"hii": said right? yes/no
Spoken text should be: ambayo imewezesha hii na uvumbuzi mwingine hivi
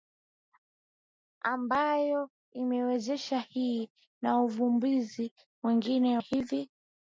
yes